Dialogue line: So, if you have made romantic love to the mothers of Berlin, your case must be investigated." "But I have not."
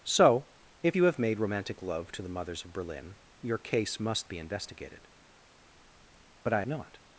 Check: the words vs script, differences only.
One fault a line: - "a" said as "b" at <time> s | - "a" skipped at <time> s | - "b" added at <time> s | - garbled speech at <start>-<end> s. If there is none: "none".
- "have" skipped at 6.6 s